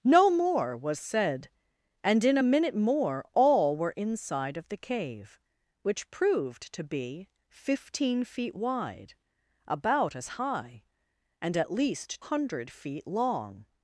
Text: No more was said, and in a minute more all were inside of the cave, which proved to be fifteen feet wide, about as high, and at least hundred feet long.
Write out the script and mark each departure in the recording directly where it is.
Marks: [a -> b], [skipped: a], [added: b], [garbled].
No more was said, and in a minute more all were inside of the cave, which proved to be fifteen feet wide, about as high, and at least hundred feet long.